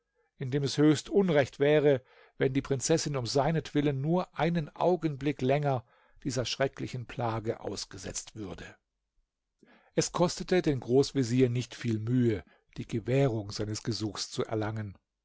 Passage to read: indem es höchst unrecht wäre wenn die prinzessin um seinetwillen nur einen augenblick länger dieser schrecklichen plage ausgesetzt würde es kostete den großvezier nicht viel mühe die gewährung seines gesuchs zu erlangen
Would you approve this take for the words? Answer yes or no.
yes